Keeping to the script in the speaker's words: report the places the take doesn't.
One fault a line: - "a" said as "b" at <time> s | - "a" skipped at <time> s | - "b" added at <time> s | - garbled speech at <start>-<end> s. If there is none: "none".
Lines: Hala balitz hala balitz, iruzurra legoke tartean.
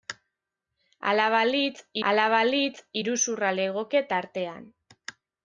none